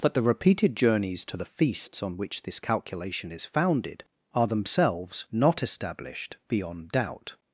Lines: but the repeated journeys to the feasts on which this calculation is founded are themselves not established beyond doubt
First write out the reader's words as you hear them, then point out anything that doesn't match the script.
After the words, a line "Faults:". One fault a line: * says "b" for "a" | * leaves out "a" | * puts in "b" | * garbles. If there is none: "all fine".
but the repeated journeys to the feasts on which this calculation is founded are themselves not established beyond doubt
Faults:
all fine